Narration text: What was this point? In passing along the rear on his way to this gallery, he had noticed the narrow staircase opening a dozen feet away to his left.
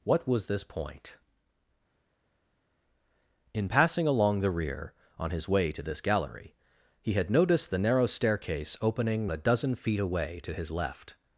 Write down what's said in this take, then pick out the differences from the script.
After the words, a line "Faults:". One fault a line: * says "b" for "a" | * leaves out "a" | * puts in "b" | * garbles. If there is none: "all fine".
What was this point? In passing along the rear on his way to this gallery, he had noticed the narrow staircase opening a dozen feet away to his left.
Faults:
all fine